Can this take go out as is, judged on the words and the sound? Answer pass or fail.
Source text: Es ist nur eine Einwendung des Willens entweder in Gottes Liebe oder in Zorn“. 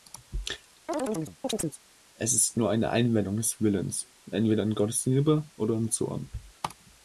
fail